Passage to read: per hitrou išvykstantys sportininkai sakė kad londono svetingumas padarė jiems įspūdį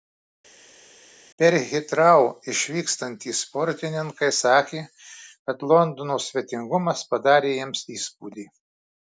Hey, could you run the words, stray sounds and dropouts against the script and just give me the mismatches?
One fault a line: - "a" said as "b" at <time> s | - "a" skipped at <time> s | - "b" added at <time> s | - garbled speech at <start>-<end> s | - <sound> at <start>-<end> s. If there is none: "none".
none